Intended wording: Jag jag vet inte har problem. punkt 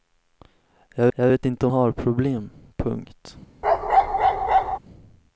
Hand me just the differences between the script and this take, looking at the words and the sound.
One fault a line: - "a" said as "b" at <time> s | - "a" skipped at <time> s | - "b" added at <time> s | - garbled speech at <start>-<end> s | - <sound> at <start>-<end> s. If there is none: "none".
- bark at 3.6-4.8 s